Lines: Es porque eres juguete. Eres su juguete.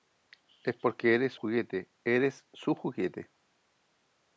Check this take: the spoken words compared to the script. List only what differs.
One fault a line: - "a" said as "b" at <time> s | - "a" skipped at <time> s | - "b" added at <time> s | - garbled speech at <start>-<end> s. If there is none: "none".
none